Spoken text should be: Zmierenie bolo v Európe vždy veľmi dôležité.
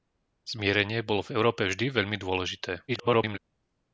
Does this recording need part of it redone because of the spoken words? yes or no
yes